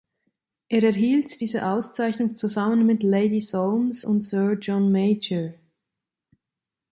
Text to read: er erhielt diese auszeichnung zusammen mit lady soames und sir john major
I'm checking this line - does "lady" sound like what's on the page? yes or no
yes